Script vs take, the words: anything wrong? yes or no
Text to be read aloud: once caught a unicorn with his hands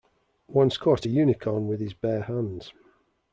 yes